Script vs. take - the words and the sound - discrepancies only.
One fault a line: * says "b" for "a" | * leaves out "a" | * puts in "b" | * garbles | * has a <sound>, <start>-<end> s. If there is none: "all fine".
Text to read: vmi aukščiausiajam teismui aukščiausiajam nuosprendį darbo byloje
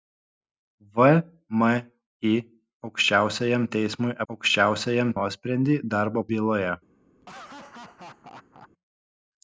* has a laugh, 7.2-8.7 s